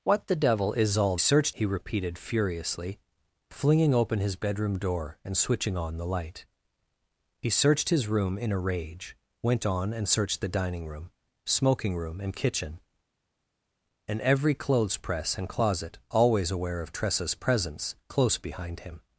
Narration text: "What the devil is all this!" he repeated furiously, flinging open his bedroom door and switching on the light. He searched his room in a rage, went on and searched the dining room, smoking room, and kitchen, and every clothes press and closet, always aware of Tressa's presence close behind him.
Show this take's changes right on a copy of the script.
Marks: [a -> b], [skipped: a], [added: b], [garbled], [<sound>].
"What the devil is all [this!" -> searched] he repeated furiously, flinging open his bedroom door and switching on the light. He searched his room in a rage, went on and searched the dining room, smoking room, and kitchen, and every clothes press and closet, always aware of Tressa's presence close behind him.